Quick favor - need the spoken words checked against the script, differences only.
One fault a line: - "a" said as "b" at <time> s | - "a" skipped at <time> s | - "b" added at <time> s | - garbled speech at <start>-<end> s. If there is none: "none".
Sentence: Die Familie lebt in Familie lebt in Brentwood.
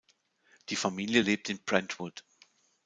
- "Familie lebt in" skipped at 1.6 s